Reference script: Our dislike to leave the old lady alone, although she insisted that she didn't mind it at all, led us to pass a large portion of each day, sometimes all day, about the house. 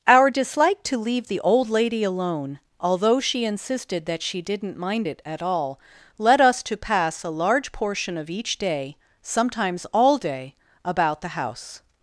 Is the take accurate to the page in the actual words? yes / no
yes